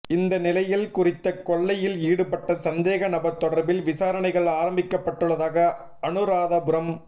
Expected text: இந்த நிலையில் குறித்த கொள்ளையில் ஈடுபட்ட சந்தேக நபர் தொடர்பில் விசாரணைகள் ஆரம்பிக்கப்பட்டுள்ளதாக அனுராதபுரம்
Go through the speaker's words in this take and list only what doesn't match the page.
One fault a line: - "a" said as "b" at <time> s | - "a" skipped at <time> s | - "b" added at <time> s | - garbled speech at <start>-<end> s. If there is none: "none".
none